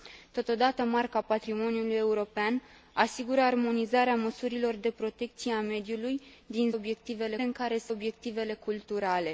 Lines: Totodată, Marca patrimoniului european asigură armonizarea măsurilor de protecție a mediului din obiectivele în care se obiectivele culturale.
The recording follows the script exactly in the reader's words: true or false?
true